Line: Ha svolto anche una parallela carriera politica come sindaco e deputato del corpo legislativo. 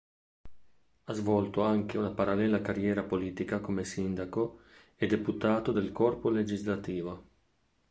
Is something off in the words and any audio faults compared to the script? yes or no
no